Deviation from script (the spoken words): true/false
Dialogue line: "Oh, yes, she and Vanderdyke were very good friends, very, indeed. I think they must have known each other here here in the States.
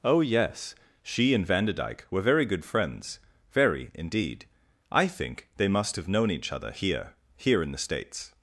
false